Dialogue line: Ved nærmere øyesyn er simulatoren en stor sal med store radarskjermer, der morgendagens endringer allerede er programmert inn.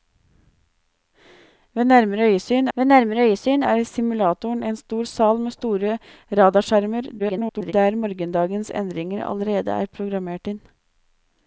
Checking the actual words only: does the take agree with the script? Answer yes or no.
no